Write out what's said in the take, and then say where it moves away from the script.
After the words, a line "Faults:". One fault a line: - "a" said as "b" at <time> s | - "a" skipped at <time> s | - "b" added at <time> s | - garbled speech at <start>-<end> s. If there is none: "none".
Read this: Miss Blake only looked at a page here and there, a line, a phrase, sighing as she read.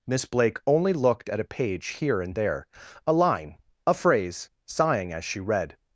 Miss Blake only looked at a page here and there, a line, a phrase, sighing as she read.
Faults:
none